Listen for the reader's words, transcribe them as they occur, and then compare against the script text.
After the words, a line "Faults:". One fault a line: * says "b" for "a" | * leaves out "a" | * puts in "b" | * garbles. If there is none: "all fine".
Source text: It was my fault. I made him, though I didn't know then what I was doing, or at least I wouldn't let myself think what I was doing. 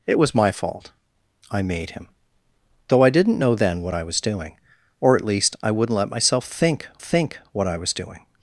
It was my fault. I made him, though I didn't know then what I was doing, or at least I wouldn't let myself think think what I was doing.
Faults:
* puts in "think"